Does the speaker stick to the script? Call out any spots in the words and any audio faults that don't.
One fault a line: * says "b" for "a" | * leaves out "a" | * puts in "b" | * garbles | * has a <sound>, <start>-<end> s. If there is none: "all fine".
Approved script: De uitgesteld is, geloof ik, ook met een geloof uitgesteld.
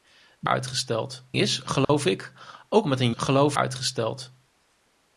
* has a dropout, 1.8-1.9 s